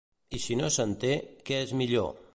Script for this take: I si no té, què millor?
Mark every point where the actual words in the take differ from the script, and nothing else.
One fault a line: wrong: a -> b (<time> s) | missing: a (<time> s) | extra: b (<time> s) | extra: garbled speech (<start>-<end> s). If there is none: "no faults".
extra: se'n (0.7 s)
extra: és (1.6 s)